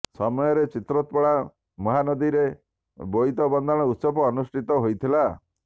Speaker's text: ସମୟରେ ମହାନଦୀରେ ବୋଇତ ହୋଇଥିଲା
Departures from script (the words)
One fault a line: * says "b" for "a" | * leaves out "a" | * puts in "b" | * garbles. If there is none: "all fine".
* puts in "ଚିତ୍ରୋତ୍ପଳା"
* puts in "ବନ୍ଦାଣ ଉତ୍ସବ ଅନୁଷ୍ଠିତ"